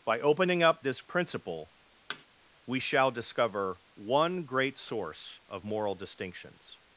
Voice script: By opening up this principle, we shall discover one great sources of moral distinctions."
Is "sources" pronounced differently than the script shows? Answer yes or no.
yes